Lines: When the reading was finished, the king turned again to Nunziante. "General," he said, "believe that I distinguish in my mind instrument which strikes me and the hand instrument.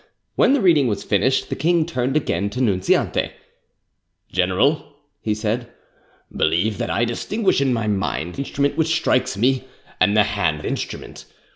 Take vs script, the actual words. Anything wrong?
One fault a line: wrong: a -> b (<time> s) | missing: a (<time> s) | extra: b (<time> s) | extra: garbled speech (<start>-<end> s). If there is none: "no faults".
no faults